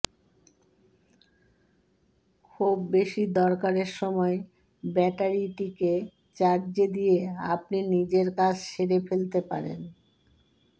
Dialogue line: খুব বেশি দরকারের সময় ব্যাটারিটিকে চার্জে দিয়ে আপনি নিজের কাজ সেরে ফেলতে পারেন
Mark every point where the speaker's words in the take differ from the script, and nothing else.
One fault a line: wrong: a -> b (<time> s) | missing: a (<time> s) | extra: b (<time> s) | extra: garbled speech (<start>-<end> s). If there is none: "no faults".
no faults